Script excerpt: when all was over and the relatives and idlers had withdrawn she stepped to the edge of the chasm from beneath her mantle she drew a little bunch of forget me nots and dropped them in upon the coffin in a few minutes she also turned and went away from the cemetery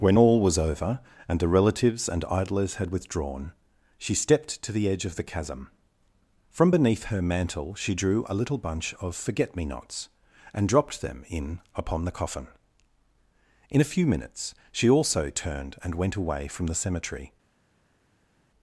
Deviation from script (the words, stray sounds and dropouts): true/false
false